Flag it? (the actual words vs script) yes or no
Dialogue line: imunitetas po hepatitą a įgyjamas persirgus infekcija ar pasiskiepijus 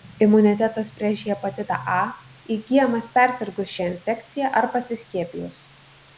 yes